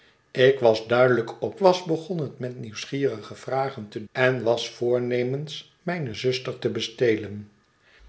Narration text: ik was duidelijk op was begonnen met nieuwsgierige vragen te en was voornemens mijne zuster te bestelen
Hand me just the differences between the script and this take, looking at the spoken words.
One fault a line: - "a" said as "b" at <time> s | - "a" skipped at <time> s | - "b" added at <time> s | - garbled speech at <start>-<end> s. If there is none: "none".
none